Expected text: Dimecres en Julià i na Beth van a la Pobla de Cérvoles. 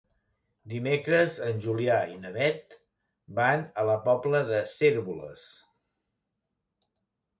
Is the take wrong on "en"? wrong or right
right